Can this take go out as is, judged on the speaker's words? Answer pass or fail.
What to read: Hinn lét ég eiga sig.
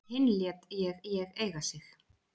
fail